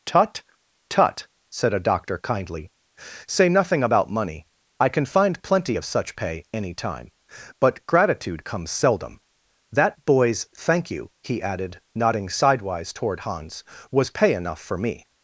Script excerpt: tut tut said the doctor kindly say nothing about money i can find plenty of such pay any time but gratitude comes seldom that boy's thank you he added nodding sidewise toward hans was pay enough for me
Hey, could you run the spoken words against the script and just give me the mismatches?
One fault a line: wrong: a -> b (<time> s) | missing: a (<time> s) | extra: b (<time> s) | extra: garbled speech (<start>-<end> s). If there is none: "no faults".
wrong: the -> a (1.7 s)